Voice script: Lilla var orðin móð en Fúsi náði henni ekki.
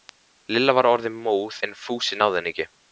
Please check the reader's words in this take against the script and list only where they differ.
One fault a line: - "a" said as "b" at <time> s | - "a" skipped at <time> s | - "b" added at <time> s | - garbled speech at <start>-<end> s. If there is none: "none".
none